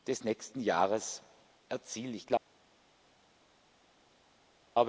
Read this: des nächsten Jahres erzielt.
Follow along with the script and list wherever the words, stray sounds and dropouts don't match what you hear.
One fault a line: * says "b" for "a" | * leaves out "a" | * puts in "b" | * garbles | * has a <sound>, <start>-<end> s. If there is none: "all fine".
all fine